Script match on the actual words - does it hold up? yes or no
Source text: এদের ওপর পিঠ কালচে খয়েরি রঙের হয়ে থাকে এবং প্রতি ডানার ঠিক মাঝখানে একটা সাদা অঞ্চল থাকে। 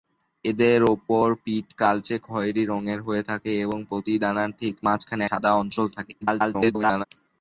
no